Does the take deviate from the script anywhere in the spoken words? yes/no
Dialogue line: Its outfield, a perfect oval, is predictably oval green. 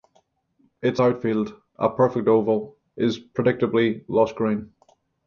yes